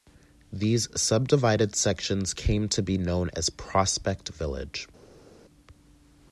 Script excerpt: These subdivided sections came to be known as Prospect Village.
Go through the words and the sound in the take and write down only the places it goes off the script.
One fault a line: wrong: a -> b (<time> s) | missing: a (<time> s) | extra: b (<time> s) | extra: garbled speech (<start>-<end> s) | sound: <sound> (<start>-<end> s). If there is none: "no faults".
no faults